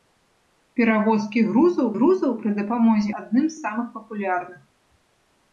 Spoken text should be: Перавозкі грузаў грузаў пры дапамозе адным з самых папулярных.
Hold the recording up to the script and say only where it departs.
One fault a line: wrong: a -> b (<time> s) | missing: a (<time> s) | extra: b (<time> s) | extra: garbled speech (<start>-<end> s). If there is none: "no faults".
no faults